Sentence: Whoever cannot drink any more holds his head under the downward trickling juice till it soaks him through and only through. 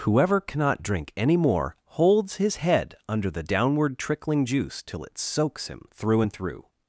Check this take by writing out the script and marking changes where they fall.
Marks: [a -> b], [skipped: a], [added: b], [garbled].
Whoever cannot drink any more holds his head under the downward trickling juice till it soaks him through and [skipped: only] through.